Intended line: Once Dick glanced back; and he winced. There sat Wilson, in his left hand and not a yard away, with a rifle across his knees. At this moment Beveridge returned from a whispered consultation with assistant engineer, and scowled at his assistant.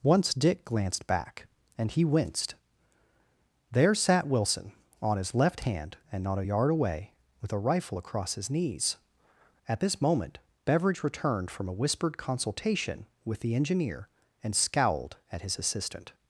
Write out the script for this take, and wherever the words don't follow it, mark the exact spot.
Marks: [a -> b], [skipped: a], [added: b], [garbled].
Once Dick glanced back; and he winced. There sat Wilson, [in -> on] his left hand and not a yard away, with a rifle across his knees. At this moment Beveridge returned from a whispered consultation with [assistant -> the] engineer, and scowled at his assistant.